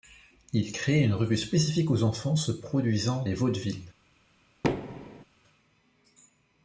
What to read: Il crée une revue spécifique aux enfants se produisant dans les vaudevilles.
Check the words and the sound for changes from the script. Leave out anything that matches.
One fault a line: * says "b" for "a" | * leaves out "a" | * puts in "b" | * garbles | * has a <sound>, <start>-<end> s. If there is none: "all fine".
* leaves out "dans"
* has a thud, 4.6-5.2 s